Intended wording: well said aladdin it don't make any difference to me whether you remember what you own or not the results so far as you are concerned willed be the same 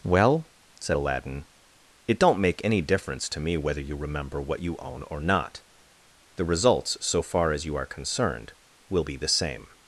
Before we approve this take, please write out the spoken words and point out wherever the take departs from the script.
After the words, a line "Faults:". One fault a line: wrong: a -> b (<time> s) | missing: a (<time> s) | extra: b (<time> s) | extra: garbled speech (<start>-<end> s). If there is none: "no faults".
well said aladdin it don't make any difference to me whether you remember what you own or not the results so far as you are concerned will be the same
Faults:
wrong: willed -> will (8.9 s)